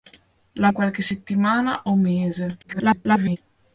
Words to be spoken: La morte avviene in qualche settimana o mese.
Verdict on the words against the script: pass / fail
fail